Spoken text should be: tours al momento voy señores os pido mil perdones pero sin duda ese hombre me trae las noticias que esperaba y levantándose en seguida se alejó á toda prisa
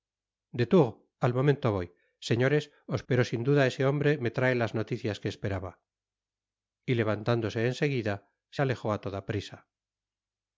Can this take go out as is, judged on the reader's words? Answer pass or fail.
fail